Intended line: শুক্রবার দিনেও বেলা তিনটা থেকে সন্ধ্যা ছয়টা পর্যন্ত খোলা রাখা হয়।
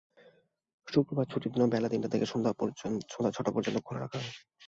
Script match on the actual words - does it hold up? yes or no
no